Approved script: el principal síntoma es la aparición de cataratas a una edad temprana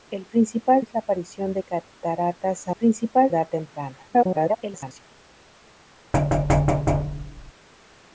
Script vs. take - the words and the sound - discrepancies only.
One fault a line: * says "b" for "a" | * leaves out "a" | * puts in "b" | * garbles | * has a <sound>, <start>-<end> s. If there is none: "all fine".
* leaves out "síntoma"
* says "principal" for "una"
* garbles
* has a thud, 6.1-7.5 s